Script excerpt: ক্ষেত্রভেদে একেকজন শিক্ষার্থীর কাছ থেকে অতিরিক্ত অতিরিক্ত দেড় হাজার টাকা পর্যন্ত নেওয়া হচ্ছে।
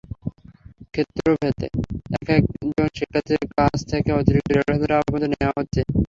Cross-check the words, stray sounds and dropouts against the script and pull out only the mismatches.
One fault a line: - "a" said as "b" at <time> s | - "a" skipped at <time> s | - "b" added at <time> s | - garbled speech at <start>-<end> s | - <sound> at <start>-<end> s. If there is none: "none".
- "অতিরিক্ত" skipped at 4.5 s